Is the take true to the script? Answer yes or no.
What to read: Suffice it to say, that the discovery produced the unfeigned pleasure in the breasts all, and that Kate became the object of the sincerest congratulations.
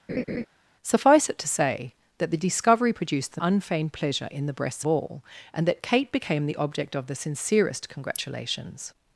yes